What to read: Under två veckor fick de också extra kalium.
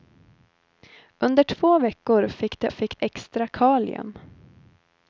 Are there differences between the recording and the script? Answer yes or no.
yes